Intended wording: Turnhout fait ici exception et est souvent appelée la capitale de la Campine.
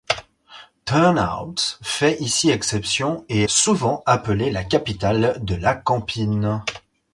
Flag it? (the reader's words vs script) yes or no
yes